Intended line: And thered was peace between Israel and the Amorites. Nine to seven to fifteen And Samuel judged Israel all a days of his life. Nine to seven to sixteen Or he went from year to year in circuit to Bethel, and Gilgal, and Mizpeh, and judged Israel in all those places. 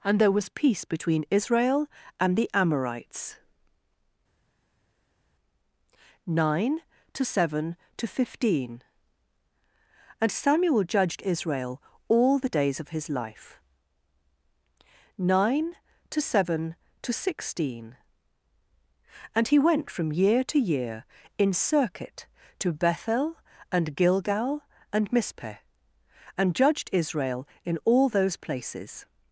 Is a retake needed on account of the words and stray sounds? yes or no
yes